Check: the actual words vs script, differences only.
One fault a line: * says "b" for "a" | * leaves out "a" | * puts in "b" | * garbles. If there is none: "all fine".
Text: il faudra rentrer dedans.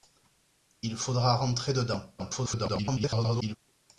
* garbles